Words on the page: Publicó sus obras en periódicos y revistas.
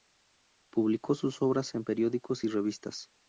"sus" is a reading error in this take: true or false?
false